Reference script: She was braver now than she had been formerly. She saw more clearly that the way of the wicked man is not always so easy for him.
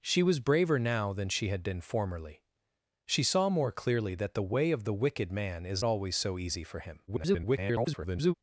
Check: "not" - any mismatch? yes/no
yes